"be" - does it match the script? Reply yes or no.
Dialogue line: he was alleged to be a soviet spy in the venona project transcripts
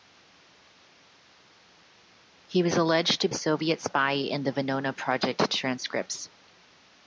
no